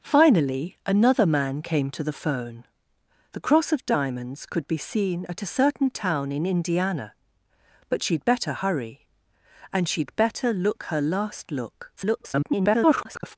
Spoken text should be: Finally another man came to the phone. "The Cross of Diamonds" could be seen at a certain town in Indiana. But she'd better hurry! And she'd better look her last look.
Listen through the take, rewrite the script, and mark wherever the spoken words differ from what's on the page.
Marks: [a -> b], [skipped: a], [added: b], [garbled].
Finally another man came to the phone. "The Cross of Diamonds" could be seen at a certain town in Indiana. But she'd better hurry! And she'd better look her last look. [garbled]